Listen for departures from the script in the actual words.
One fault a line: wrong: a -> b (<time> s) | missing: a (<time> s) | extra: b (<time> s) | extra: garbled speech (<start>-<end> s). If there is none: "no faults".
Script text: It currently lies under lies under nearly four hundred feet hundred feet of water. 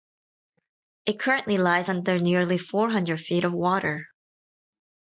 missing: lies under (2.2 s)
missing: hundred feet (3.4 s)